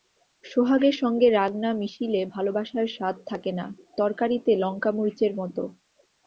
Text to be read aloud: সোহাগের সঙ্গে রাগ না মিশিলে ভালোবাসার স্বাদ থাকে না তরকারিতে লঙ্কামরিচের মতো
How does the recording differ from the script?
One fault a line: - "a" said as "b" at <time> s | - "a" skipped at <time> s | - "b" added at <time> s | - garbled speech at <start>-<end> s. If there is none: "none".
none